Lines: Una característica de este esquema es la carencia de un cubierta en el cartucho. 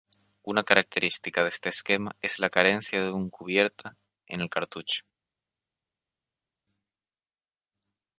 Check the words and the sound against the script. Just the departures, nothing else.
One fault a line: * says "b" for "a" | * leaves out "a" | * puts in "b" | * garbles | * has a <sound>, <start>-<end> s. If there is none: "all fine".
all fine